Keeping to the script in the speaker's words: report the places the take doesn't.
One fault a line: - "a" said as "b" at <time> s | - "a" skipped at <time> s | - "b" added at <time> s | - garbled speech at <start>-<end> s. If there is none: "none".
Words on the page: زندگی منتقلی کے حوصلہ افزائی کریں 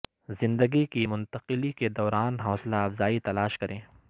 - "کی" added at 0.8 s
- "دوران" added at 1.9 s
- "تلاش" added at 3.2 s